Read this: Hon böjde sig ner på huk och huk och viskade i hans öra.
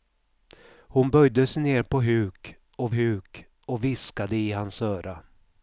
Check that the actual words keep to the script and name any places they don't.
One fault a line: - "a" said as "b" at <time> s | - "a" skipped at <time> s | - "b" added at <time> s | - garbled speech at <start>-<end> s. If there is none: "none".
none